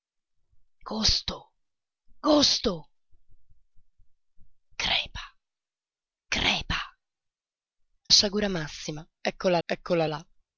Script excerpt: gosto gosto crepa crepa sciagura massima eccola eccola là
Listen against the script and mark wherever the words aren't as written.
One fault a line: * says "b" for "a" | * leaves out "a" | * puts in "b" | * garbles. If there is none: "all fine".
all fine